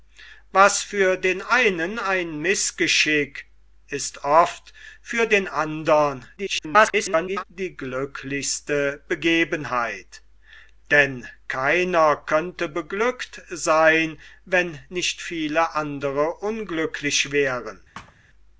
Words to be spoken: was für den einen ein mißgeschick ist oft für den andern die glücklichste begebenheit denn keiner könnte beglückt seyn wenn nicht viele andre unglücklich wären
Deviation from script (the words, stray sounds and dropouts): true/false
true